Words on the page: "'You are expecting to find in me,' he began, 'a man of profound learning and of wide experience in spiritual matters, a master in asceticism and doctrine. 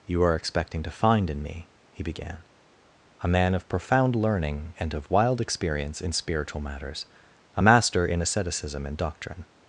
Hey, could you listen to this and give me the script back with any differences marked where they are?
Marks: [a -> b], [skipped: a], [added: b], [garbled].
"'You are expecting to find in me,' he began, 'a man of profound learning and of [wide -> wild] experience in spiritual matters, a master in asceticism and doctrine.